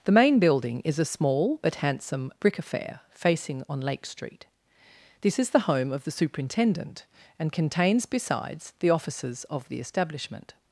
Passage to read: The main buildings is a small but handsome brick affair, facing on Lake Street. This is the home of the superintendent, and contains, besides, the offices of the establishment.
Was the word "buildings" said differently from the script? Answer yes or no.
yes